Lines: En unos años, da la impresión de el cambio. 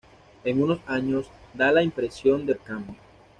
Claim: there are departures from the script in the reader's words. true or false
false